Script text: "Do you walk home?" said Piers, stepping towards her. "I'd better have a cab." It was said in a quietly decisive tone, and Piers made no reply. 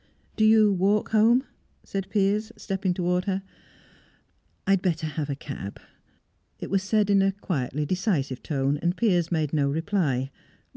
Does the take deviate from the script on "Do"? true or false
false